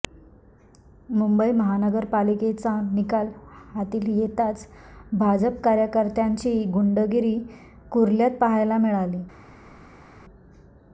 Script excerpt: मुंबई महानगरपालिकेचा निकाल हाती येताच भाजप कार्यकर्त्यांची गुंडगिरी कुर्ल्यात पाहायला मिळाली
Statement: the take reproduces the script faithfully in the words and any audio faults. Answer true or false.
true